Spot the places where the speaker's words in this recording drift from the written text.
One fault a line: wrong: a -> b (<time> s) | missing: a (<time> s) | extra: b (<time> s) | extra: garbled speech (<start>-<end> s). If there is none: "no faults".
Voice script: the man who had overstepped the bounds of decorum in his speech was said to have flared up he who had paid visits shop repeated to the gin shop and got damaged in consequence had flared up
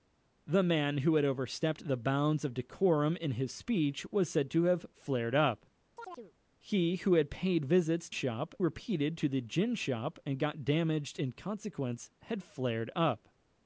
no faults